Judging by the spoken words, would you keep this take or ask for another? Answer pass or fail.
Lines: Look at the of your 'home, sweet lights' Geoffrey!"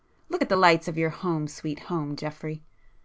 fail